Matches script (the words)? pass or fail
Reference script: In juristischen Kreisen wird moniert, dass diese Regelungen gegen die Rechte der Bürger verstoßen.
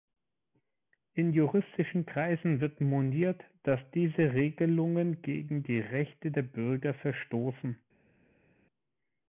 pass